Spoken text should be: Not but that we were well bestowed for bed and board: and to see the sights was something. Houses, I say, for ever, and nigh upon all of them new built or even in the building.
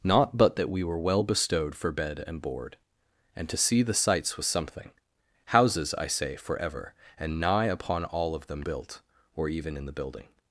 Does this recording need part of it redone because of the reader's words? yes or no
yes